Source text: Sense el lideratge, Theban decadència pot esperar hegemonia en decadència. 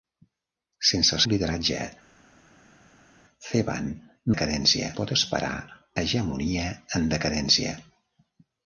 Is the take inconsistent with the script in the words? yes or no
no